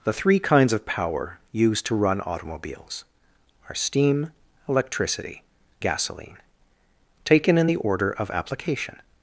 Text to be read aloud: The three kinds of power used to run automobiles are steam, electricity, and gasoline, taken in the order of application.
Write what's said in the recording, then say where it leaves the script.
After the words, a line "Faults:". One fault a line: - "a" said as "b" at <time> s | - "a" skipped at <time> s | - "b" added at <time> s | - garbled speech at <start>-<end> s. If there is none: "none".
The three kinds of power used to run automobiles are steam, electricity, gasoline, taken in the order of application.
Faults:
- "and" skipped at 5.4 s